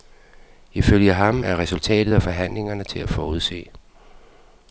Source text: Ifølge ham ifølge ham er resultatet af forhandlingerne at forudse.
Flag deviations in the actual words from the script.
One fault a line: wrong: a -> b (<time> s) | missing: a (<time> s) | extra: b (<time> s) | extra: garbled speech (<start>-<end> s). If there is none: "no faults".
missing: ifølge ham (1.4 s)
extra: til (2.8 s)